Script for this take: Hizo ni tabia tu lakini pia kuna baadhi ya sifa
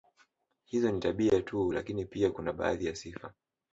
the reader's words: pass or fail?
pass